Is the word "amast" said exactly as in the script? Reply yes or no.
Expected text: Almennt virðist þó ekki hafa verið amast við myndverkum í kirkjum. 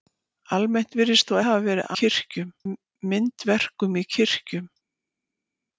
no